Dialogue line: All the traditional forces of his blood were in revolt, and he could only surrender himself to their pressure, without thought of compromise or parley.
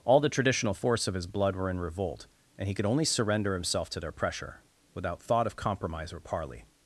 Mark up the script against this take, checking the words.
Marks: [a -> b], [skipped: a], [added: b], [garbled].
All the traditional [forces -> force] of his blood were in revolt, and he could only surrender himself to their pressure, without thought of compromise or parley.